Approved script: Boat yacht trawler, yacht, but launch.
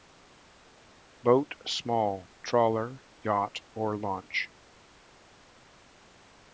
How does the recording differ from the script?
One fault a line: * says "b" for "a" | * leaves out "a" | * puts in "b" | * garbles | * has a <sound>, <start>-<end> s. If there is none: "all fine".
* says "small" for "yacht"
* says "or" for "but"